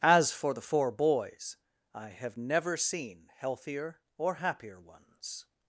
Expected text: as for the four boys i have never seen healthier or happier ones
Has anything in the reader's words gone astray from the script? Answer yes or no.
no